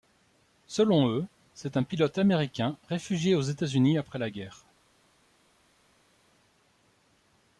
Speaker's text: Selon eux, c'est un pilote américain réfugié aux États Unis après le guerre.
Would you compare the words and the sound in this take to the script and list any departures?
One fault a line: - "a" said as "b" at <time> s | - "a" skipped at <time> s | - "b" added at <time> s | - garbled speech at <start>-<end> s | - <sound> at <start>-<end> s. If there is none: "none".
- "le" said as "la" at 4.2 s